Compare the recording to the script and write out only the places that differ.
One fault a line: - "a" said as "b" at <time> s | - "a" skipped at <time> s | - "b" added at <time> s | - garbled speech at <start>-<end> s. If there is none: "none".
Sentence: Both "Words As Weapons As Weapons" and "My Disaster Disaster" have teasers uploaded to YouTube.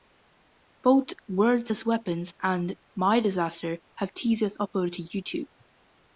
- "As Weapons" skipped at 2.3 s
- "Disaster" skipped at 3.8 s